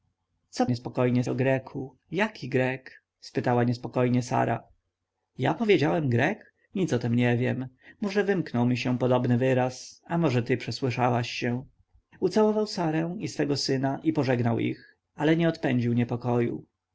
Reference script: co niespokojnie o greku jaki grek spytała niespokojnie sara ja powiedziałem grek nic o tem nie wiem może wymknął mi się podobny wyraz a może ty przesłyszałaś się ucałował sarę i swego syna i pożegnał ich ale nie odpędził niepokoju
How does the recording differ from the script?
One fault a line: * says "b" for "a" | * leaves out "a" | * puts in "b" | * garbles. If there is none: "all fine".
all fine